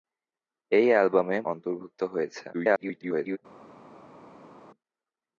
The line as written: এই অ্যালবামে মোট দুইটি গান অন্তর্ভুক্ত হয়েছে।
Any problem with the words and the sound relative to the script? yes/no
yes